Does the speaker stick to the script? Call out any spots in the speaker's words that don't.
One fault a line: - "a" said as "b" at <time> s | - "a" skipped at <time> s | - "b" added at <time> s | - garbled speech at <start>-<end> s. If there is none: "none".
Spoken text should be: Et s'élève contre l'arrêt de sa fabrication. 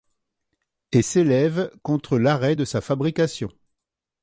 none